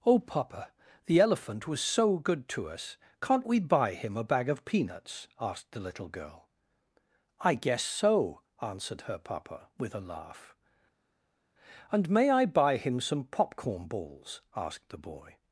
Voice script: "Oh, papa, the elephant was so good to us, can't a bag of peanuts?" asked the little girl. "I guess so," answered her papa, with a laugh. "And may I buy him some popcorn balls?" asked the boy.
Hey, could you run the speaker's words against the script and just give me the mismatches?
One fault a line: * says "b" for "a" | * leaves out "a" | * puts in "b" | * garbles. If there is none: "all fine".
* puts in "we buy him"